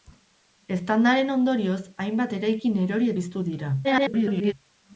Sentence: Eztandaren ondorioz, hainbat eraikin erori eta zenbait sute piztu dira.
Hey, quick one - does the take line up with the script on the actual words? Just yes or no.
no